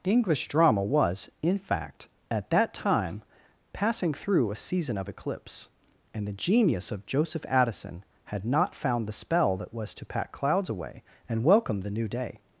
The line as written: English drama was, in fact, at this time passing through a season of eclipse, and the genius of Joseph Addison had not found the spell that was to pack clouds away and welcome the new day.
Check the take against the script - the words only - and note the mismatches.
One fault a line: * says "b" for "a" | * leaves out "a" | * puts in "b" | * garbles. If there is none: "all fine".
* says "that" for "this"